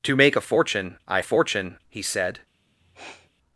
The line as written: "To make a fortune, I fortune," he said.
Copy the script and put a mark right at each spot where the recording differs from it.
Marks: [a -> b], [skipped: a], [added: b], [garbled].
"To make a fortune, I fortune," he said.